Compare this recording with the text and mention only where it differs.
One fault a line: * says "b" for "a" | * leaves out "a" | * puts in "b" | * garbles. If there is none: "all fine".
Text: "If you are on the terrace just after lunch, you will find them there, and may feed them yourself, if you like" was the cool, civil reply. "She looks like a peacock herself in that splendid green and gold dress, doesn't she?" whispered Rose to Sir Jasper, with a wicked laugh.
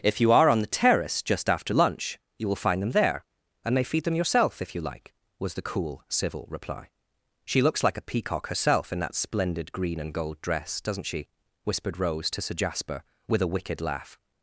all fine